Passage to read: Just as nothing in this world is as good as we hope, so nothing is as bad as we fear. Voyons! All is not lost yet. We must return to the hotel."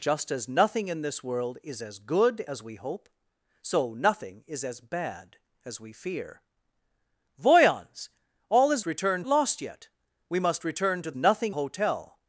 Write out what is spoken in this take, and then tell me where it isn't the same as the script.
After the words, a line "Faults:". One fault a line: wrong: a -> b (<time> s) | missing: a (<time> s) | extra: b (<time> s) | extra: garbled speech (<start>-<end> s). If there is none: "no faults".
Just as nothing in this world is as good as we hope, so nothing is as bad as we fear. Voyons! All is return lost yet. We must return to nothing hotel."
Faults:
wrong: not -> return (8.8 s)
wrong: the -> nothing (11.2 s)